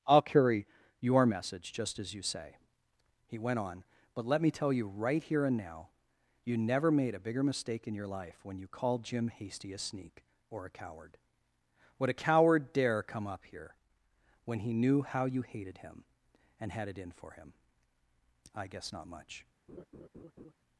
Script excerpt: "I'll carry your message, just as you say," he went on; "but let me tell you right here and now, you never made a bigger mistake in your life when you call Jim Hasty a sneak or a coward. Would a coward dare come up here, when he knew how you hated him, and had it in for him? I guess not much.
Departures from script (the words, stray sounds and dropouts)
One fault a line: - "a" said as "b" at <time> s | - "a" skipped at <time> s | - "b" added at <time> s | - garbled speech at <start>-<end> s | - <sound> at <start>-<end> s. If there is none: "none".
- "call" said as "called" at 8.7 s
- laugh at 19.7-20.5 s